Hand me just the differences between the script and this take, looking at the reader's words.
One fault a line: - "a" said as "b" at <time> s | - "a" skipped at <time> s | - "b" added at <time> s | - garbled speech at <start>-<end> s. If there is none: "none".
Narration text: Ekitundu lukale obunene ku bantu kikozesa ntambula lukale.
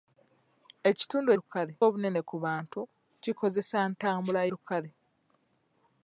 none